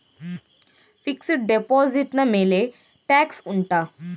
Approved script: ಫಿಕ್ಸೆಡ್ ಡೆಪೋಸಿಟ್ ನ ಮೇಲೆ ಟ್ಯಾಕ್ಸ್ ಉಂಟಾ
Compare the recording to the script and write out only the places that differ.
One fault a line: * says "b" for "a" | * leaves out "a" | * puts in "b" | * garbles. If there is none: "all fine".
all fine